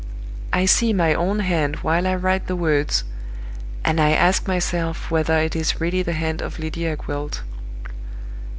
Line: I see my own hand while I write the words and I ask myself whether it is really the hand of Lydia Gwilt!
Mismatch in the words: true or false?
false